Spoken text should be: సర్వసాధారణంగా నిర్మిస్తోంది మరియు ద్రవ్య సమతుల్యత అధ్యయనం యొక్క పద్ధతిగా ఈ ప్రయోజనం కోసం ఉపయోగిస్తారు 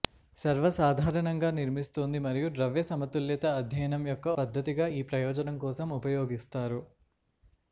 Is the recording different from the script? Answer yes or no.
no